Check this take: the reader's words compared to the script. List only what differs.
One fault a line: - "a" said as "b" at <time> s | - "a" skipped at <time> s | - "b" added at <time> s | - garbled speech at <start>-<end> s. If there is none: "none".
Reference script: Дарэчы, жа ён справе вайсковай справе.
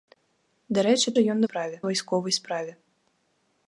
none